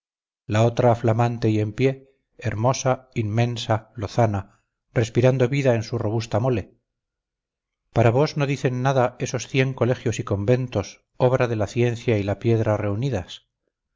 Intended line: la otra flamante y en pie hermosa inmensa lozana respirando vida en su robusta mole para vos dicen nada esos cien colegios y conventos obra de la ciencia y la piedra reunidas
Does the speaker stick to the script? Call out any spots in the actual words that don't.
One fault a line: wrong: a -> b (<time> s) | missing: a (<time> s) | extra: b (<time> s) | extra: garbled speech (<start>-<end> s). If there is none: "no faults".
extra: no (8.3 s)